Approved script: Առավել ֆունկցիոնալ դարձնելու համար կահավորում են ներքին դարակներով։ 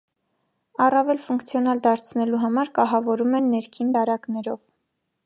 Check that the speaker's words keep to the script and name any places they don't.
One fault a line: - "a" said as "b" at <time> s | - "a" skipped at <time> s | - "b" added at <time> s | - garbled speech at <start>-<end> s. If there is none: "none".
none